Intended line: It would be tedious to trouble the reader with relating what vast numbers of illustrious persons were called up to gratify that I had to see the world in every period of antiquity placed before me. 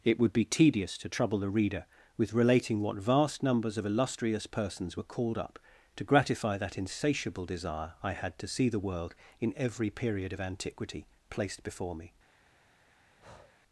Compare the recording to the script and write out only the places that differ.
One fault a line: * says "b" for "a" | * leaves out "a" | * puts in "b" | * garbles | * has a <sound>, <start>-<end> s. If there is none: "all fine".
* puts in "insatiable desire"
* has a breath, 13.2-13.5 s